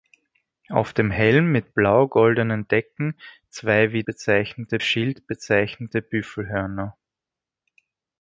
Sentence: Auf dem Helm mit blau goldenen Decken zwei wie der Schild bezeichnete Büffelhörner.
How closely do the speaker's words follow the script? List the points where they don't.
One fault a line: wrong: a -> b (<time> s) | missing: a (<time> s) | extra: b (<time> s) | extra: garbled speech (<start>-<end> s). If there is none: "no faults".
wrong: der -> bezeichnete (4.0 s)